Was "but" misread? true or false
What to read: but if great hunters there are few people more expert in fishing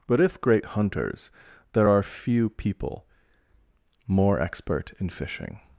false